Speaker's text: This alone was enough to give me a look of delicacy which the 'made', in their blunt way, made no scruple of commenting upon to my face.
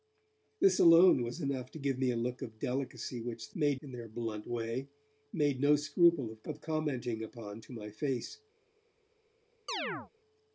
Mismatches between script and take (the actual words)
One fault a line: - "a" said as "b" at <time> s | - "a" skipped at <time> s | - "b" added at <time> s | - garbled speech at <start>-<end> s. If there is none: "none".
none